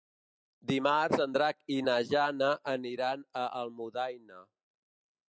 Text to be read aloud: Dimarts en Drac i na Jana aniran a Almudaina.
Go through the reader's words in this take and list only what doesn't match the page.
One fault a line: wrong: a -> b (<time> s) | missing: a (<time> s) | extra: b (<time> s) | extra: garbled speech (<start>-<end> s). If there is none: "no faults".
no faults